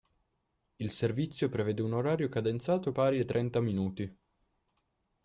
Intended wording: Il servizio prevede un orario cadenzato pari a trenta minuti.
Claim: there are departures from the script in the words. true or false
false